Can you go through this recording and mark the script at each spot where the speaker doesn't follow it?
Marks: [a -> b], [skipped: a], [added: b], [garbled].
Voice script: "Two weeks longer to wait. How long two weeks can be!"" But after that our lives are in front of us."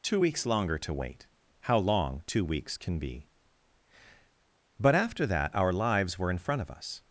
"Two weeks longer to wait. How long two weeks can be!"" But after that our lives [are -> were] in front of us."